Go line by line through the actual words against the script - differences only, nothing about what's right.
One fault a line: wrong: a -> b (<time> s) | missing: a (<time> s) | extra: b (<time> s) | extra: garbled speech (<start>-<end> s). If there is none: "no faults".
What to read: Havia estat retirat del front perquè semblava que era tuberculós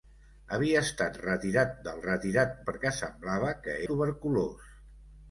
wrong: front -> retirat (2.1 s)
missing: era (3.8 s)